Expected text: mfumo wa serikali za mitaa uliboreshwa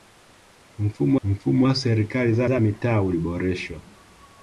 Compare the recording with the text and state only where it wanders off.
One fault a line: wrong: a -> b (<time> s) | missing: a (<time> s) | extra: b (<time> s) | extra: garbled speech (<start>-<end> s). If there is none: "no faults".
extra: mfumo (1.2 s)
extra: za (2.4 s)